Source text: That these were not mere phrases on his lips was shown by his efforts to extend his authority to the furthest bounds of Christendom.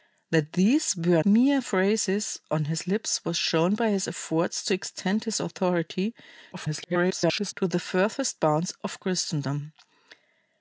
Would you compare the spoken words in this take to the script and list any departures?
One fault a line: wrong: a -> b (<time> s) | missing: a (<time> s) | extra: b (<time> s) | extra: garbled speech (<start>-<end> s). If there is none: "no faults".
missing: not (1.2 s)
extra: garbled speech (6.5-7.5 s)